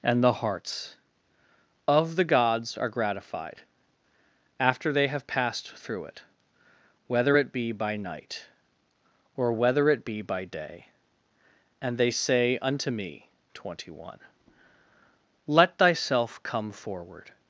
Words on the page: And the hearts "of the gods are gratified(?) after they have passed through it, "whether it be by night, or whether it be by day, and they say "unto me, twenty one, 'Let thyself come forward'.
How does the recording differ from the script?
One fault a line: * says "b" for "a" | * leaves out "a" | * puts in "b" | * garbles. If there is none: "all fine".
all fine